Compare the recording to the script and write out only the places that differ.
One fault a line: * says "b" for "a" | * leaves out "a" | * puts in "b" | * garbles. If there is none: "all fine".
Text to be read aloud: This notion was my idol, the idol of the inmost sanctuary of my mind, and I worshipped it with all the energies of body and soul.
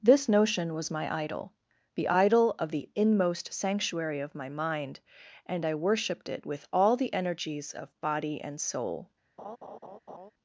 all fine